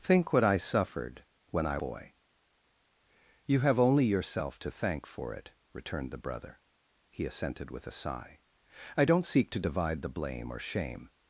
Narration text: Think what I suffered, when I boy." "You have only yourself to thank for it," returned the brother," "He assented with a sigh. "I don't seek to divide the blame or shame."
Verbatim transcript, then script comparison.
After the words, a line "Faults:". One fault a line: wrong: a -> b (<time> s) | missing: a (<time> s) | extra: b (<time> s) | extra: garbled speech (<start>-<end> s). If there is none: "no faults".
Think what I suffered, when I boy." "You have only yourself to thank for it," returned the brother," "He assented with a sigh. "I don't seek to divide the blame or shame."
Faults:
no faults